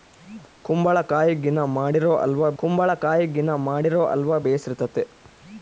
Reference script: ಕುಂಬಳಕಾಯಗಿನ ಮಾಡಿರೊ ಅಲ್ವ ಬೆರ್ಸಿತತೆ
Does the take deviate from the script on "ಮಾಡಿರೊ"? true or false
false